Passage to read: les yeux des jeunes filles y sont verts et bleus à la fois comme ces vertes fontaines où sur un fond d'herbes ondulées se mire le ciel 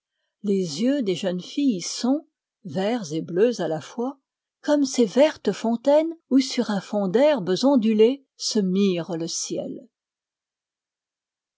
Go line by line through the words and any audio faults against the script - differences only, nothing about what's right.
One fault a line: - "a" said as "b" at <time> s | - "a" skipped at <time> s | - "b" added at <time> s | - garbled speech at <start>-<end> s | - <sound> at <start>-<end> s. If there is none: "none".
none